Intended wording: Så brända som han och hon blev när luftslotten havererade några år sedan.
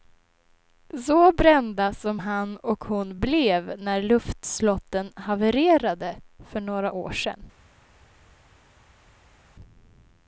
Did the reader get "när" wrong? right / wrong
right